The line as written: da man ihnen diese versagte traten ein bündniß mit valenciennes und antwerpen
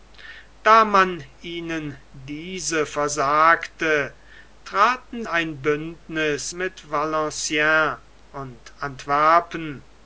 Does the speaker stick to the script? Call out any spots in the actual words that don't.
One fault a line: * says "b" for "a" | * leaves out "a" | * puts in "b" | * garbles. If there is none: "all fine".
all fine